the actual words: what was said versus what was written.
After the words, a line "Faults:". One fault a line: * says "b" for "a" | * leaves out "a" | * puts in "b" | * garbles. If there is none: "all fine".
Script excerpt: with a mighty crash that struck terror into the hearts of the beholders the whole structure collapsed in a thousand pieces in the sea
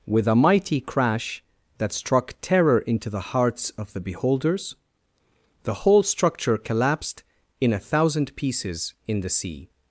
with a mighty crash that struck terror into the hearts of the beholders the whole structure collapsed in a thousand pieces in the sea
Faults:
all fine